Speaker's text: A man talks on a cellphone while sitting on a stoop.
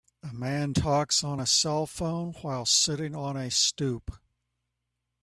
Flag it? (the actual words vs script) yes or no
no